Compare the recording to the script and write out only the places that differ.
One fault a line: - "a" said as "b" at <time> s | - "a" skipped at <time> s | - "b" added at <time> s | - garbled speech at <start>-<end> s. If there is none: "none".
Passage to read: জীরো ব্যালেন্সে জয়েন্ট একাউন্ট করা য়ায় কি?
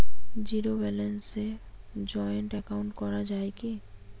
none